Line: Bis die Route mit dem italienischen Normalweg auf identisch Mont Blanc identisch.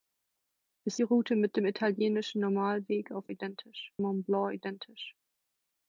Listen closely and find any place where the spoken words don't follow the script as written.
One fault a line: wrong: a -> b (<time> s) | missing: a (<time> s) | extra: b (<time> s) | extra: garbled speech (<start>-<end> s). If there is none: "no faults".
no faults